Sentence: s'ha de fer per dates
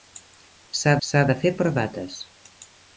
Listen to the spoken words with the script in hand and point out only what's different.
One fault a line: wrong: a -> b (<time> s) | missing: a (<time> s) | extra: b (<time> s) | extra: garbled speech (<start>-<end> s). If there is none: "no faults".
extra: s'ha (1.1 s)